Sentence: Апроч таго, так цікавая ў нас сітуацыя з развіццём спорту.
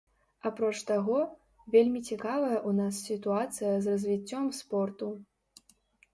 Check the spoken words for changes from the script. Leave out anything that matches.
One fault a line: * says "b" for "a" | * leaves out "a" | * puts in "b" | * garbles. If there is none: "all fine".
* says "вельмі" for "так"